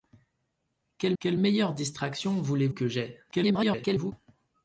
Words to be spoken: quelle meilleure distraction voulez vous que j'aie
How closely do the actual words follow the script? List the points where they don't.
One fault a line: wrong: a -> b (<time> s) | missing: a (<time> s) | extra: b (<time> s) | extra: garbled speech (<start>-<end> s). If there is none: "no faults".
extra: quelle (1.2 s)
missing: vous (2.7 s)
extra: garbled speech (3.3-4.1 s)